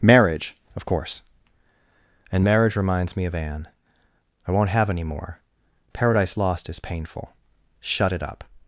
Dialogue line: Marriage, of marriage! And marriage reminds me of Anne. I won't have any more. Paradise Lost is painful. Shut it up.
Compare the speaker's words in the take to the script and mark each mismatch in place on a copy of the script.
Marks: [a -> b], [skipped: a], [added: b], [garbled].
Marriage, of [marriage! -> course] And marriage reminds me of Anne. I won't have any more. Paradise Lost is painful. Shut it up.